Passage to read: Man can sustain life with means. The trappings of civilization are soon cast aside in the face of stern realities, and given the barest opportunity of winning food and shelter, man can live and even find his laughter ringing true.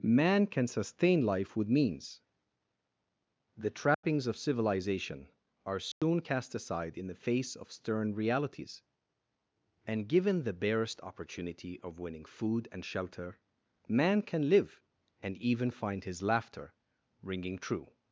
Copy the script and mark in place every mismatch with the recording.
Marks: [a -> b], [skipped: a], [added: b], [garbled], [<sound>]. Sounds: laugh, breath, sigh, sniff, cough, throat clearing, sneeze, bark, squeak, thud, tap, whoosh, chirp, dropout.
Man can sustain life with means. The trappings [dropout] of civilization are soon [dropout] cast aside in the face of stern realities, and given the barest opportunity of winning food and shelter, man can live and even find his laughter ringing true.